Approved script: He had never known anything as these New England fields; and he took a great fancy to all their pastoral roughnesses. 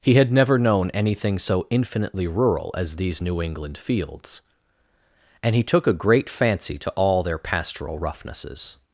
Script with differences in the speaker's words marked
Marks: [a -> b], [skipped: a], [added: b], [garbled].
He had never known anything [added: so infinitely rural] as these New England fields; and he took a great fancy to all their pastoral roughnesses.